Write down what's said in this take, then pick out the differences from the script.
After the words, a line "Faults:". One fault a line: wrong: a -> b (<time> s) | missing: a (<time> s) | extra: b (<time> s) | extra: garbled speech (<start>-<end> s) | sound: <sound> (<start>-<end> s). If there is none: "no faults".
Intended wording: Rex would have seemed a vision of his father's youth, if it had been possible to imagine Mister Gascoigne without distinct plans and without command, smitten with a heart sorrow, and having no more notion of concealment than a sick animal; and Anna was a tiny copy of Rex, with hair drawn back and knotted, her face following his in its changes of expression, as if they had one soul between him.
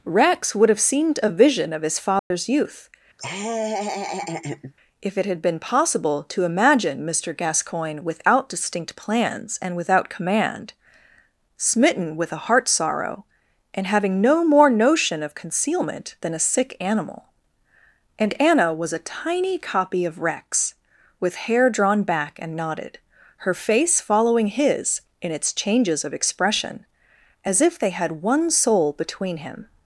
Rex would have seemed a vision of his father's youth, if it had been possible to imagine Mister Gascoigne without distinct plans and without command, smitten with a heart sorrow, and having no more notion of concealment than a sick animal; and Anna was a tiny copy of Rex, with hair drawn back and knotted, her face following his in its changes of expression, as if they had one soul between him.
Faults:
sound: dropout (2.2-2.3 s)
sound: laugh (3.2-4.7 s)